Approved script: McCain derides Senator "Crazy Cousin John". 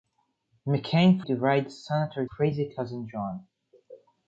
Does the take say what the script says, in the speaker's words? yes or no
yes